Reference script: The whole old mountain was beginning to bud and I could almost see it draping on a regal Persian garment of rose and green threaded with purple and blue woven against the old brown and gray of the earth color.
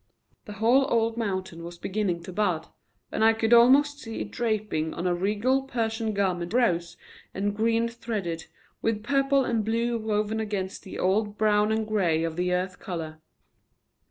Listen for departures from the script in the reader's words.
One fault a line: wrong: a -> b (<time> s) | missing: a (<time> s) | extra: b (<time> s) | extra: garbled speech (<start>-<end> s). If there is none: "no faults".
missing: of (6.5 s)